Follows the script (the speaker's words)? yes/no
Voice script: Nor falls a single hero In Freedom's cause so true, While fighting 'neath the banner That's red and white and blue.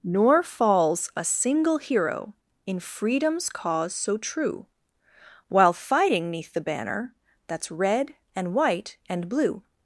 yes